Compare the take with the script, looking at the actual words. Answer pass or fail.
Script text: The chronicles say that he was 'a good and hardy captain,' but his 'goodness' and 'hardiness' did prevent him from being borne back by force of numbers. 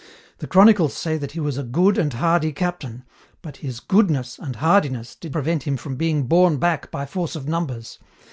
pass